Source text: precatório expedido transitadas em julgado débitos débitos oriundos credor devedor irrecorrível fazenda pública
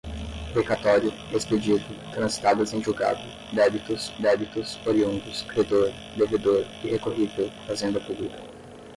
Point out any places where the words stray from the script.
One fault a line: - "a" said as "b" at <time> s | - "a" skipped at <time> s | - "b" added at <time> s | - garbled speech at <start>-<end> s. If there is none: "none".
none